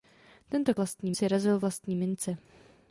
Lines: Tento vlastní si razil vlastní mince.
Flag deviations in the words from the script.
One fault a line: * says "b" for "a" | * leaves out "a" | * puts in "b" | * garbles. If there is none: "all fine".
all fine